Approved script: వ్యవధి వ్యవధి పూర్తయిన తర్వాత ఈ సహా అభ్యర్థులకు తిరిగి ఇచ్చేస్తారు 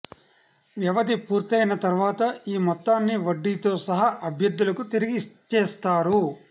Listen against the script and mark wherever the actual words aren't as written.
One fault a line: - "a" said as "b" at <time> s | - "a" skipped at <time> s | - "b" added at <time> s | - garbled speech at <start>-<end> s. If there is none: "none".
- "వ్యవధి" skipped at 1.1 s
- "మొత్తాన్ని వడ్డీతో" added at 2.6 s